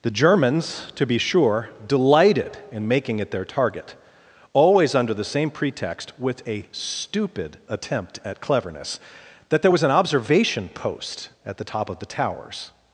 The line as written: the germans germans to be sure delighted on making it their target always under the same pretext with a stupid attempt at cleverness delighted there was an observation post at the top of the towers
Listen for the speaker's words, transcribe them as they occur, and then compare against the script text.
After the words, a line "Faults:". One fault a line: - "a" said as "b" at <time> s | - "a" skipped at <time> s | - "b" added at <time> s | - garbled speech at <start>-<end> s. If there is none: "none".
the germans to be sure delighted in making it their target always under the same pretext with a stupid attempt at cleverness that there was an observation post at the top of the towers
Faults:
- "germans" skipped at 0.9 s
- "on" said as "in" at 2.7 s
- "delighted" said as "that" at 9.5 s